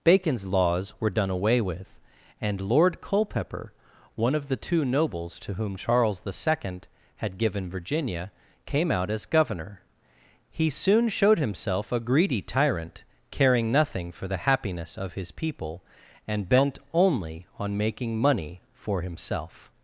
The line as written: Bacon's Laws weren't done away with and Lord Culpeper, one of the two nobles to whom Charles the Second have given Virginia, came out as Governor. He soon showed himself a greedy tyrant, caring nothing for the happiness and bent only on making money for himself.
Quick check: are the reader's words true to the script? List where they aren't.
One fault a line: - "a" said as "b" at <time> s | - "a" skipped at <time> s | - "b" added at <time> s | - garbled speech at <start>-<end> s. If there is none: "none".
- "weren't" said as "were" at 1.0 s
- "have" said as "had" at 7.2 s
- "of his people" added at 15.0 s